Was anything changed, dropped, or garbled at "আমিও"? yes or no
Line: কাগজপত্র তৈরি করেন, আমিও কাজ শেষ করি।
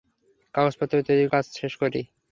yes